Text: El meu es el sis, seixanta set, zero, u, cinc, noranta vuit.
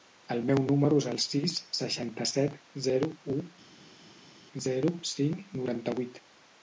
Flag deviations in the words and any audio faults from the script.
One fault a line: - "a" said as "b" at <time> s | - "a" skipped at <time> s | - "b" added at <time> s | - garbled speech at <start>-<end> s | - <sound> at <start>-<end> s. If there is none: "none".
- "número" added at 0.7 s
- "zero" added at 4.7 s